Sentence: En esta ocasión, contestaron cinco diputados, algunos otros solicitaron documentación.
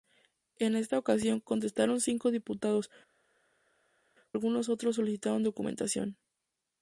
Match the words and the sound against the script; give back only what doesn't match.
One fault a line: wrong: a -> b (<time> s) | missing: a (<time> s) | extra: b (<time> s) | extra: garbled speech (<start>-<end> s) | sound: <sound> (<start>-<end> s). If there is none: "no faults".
no faults